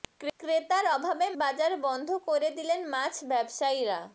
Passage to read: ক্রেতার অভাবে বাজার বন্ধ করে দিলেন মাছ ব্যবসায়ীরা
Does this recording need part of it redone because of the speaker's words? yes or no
no